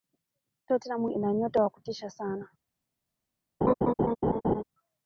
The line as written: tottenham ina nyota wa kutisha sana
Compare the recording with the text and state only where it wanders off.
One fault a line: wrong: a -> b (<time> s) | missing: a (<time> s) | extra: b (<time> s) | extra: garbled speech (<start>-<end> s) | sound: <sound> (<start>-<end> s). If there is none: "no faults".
sound: laugh (3.6-4.6 s)